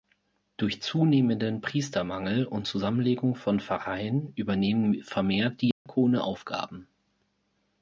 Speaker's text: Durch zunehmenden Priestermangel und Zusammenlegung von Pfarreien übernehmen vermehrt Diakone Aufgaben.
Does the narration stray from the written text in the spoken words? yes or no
no